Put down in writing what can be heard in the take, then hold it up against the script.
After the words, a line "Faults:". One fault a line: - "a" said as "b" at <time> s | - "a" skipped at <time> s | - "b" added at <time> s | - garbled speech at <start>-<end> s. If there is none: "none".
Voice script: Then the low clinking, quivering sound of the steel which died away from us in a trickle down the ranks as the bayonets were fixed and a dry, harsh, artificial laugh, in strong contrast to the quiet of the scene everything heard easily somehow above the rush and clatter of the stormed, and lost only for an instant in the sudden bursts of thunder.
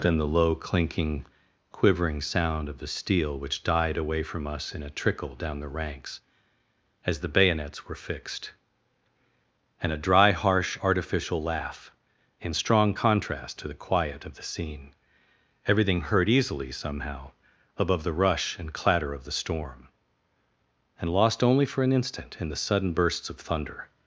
Then the low clinking, quivering sound of the steel which died away from us in a trickle down the ranks as the bayonets were fixed and a dry, harsh, artificial laugh, in strong contrast to the quiet of the scene everything heard easily somehow above the rush and clatter of the storm, and lost only for an instant in the sudden bursts of thunder.
Faults:
- "stormed" said as "storm" at 19.3 s